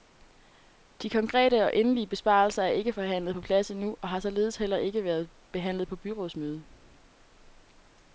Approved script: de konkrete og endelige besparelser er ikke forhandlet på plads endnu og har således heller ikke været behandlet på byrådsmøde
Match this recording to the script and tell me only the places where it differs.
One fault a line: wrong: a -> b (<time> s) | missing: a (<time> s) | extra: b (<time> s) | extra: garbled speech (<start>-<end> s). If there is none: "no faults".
no faults